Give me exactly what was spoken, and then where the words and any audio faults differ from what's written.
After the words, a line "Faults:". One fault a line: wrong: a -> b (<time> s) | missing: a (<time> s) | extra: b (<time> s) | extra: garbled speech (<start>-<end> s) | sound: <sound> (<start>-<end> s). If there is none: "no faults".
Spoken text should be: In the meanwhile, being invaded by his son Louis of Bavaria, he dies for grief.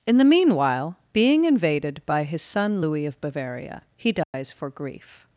In the meanwhile, being invaded by his son Louis of Bavaria, he dies for grief.
Faults:
sound: dropout (4.2-4.3 s)